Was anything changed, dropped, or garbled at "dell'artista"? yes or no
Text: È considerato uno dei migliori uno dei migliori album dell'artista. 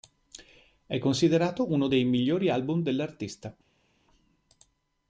no